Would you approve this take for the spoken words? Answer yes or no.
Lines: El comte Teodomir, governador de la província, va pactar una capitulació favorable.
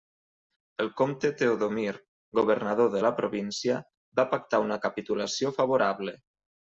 yes